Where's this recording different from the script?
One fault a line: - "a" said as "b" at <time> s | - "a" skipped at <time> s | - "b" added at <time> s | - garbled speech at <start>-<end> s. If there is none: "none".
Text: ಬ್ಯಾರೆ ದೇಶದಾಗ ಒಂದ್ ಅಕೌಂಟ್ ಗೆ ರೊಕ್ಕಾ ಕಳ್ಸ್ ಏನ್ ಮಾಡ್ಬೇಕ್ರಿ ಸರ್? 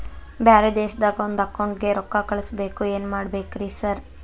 - "ಬೇಕು" added at 2.5 s